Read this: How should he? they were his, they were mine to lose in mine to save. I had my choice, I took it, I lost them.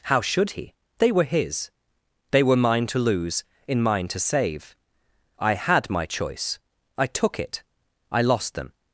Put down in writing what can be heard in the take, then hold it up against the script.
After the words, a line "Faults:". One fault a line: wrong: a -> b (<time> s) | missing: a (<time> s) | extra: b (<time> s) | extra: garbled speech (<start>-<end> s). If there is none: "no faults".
How should he? they were his, they were mine to lose in mine to save. I had my choice, I took it, I lost them.
Faults:
no faults